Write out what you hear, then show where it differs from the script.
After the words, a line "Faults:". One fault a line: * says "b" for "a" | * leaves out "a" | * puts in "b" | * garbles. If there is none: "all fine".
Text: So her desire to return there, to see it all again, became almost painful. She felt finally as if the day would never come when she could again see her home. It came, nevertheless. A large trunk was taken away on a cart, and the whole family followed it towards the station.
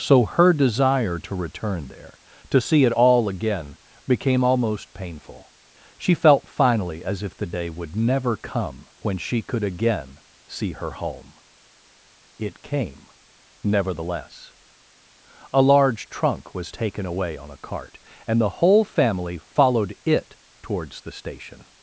So her desire to return there, to see it all again, became almost painful. She felt finally as if the day would never come when she could again see her home. It came, nevertheless. A large trunk was taken away on a cart, and the whole family followed it towards the station.
Faults:
all fine